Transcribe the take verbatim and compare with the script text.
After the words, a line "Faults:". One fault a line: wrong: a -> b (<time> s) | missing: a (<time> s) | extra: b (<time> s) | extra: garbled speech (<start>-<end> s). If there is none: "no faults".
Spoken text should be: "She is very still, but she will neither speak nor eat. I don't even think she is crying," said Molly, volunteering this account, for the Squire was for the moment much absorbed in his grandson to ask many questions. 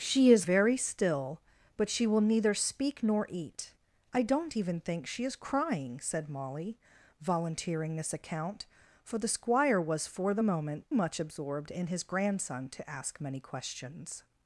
"She is very still, but she will neither speak nor eat. I don't even think she is crying," said Molly, volunteering this account, for the Squire was for the moment much absorbed in his grandson to ask many questions.
Faults:
no faults